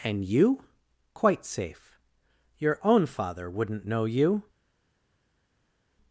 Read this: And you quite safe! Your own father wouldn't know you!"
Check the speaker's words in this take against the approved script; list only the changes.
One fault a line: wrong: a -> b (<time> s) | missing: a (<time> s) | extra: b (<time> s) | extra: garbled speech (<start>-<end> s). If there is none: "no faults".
no faults